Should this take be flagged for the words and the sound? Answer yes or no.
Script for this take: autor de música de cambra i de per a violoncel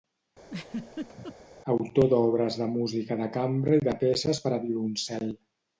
yes